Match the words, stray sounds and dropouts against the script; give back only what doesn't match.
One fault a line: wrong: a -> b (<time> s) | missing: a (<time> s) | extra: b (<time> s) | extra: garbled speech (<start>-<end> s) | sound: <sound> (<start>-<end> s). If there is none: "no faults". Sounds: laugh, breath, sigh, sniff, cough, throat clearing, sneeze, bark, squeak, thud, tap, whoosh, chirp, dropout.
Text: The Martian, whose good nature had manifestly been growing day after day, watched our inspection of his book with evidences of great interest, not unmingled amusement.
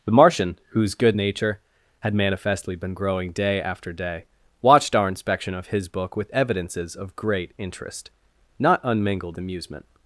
no faults